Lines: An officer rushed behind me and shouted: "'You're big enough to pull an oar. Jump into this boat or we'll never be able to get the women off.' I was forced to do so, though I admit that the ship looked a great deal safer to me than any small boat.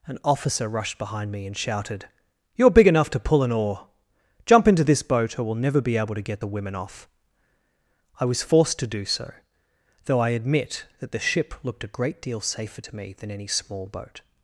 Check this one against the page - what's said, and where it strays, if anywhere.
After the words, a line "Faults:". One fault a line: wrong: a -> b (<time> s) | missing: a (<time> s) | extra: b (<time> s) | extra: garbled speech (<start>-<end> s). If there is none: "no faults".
An officer rushed behind me and shouted: "'You're big enough to pull an oar. Jump into this boat or we'll never be able to get the women off.' I was forced to do so, though I admit that the ship looked a great deal safer to me than any small boat.
Faults:
no faults